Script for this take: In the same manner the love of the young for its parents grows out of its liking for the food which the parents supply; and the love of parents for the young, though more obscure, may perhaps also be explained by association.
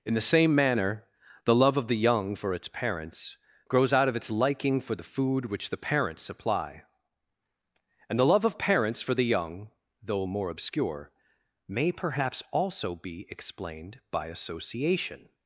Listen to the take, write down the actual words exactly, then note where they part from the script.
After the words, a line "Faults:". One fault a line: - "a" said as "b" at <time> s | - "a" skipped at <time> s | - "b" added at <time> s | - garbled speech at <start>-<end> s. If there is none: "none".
In the same manner the love of the young for its parents grows out of its liking for the food which the parents supply; and the love of parents for the young, though more obscure, may perhaps also be explained by association.
Faults:
none